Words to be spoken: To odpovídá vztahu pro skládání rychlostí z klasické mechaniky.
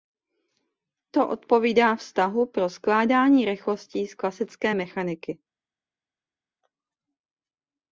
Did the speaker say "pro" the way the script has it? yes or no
yes